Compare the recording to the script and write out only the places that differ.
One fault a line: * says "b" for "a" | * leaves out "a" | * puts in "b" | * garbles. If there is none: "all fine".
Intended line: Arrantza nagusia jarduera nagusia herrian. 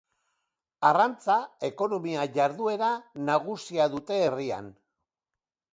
* says "ekonomia" for "nagusia"
* puts in "dute"